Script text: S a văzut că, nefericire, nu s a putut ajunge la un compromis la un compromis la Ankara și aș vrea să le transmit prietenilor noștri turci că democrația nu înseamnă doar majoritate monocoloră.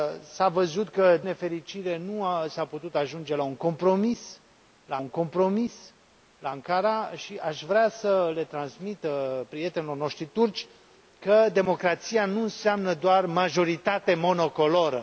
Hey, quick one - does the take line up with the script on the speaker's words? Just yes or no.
yes